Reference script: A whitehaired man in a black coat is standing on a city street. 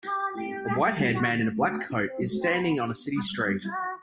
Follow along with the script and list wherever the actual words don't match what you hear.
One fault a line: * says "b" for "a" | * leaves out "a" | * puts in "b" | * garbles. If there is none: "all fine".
all fine